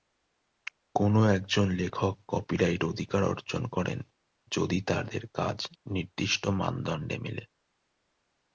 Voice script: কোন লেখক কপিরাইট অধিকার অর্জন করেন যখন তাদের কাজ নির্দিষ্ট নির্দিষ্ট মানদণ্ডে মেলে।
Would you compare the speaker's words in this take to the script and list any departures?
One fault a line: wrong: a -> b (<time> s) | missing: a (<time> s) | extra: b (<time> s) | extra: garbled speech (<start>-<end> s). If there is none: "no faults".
extra: একজন (1.4 s)
wrong: যখন -> যদি (4.5 s)
missing: নির্দিষ্ট (6.4 s)